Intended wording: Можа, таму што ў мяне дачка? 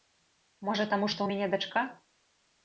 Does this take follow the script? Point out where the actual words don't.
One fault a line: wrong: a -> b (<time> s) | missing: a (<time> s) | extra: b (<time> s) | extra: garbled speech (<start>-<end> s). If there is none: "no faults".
no faults